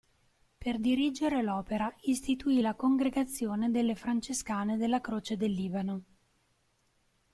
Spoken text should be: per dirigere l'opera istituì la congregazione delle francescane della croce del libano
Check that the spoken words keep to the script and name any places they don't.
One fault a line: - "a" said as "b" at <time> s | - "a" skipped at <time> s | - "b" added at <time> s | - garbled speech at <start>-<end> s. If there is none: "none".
none